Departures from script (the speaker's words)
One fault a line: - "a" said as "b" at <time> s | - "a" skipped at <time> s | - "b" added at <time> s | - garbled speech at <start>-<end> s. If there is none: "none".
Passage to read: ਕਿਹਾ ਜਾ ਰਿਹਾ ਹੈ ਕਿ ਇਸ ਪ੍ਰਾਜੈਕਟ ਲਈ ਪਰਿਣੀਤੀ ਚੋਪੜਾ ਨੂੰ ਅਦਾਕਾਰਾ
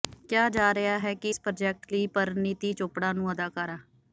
none